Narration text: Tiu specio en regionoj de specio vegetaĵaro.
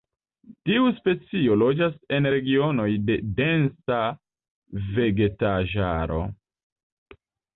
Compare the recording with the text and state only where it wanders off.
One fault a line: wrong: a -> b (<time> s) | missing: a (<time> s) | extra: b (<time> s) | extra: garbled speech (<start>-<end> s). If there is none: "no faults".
extra: loĝas (1.6 s)
wrong: specio -> densa (3.4 s)